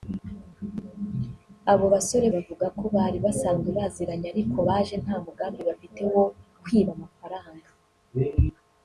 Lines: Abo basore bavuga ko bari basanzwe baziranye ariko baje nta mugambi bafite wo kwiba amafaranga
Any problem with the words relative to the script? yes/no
no